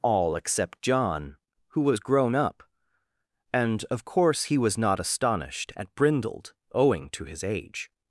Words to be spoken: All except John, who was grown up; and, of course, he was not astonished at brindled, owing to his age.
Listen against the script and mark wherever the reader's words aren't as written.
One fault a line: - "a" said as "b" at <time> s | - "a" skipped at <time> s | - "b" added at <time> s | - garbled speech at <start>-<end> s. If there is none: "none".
none